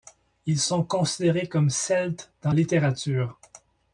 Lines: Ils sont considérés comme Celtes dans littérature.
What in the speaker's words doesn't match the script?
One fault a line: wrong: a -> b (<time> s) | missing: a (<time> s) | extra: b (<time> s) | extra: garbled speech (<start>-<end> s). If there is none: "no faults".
no faults